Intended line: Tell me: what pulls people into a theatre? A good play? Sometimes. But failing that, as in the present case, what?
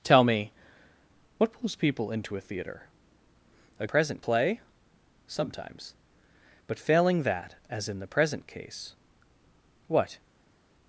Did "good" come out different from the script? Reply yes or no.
yes